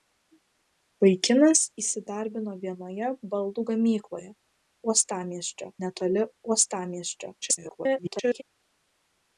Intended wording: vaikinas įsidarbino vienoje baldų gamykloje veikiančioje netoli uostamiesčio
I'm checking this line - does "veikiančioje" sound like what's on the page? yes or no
no